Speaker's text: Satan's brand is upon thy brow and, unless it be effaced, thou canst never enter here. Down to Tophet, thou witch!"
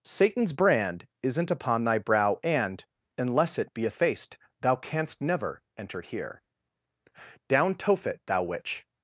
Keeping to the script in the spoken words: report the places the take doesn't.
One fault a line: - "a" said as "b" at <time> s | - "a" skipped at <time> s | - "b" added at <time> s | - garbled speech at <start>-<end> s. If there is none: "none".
- "is" said as "isn't" at 1.2 s
- "to" skipped at 7.7 s